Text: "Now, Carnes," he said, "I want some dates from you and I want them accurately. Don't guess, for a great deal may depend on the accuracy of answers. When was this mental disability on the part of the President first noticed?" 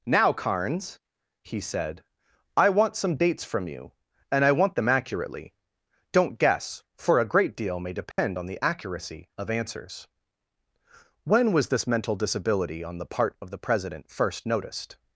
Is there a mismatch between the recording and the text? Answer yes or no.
no